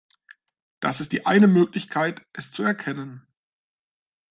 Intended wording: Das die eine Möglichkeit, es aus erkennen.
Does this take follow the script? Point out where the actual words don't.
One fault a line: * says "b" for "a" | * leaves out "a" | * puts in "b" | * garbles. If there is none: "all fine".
* puts in "ist"
* says "zu" for "aus"